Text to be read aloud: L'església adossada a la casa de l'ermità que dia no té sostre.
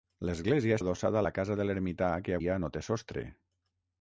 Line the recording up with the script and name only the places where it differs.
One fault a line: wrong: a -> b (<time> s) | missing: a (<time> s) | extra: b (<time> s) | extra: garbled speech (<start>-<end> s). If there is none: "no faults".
no faults